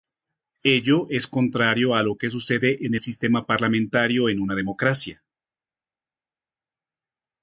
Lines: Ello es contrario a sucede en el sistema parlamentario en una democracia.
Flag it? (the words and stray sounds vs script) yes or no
yes